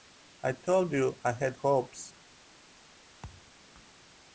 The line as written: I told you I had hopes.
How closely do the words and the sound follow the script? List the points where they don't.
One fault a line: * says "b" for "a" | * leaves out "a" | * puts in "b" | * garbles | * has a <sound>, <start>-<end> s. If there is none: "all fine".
* has a thud, 3.2-3.5 s